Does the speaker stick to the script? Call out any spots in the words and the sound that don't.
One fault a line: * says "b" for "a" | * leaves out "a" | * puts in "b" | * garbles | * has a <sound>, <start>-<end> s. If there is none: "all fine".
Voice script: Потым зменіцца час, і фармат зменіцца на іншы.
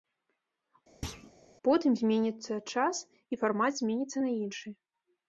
* has a thud, 1.0-1.3 s